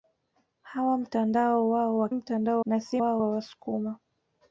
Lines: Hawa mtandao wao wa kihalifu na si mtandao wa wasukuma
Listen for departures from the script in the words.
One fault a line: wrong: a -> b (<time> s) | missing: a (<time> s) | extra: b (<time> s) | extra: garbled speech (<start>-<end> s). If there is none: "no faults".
wrong: kihalifu -> mtandao (2.1 s)
wrong: mtandao -> wao (3.0 s)